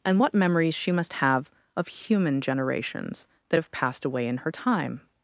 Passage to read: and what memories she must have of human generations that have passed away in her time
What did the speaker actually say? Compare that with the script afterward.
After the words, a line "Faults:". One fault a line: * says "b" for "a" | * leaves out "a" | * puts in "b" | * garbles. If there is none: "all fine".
and what memories she must have of human generations that have passed away in her time
Faults:
all fine